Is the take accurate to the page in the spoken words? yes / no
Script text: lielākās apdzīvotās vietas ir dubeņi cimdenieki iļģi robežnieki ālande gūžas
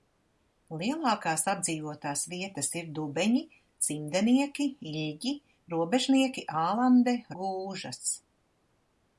yes